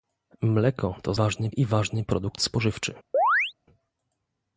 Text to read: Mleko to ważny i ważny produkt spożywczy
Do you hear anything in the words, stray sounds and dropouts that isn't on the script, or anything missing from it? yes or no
yes